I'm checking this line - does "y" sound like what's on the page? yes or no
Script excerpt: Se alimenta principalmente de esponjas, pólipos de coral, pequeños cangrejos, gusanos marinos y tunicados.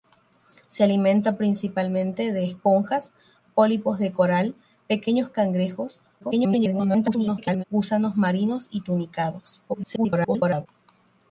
yes